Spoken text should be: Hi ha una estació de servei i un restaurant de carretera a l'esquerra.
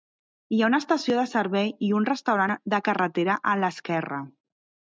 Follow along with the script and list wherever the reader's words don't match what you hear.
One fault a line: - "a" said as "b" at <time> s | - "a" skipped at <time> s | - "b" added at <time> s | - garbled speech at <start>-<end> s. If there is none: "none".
none